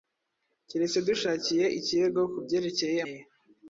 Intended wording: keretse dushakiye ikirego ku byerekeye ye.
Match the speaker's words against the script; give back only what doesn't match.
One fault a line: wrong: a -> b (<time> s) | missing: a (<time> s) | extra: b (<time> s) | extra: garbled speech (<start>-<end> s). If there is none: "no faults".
no faults